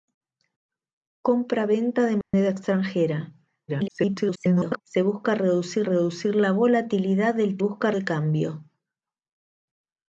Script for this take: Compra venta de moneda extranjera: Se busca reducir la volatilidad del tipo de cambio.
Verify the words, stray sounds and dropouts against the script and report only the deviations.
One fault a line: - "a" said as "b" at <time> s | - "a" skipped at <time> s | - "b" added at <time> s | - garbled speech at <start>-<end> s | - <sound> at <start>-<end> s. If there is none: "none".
- dropout at 2.2-2.3 s
- garbled speech at 3.7-4.8 s
- "reducir" added at 5.8 s
- "tipo" said as "busca" at 7.6 s